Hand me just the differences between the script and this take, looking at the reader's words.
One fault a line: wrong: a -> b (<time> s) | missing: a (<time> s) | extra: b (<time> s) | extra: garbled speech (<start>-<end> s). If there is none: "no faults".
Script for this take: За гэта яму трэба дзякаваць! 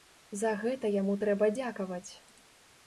no faults